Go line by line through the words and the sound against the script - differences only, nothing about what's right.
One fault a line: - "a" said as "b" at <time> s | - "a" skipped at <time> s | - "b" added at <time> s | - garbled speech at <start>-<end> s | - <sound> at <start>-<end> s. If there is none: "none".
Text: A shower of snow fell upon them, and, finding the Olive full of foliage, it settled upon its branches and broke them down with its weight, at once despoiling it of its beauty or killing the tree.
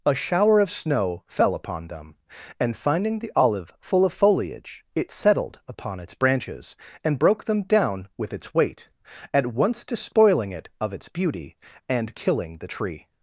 - "or" said as "and" at 11.9 s